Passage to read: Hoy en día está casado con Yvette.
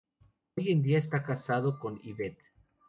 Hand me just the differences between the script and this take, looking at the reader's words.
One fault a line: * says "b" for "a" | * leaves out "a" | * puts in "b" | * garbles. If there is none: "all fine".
all fine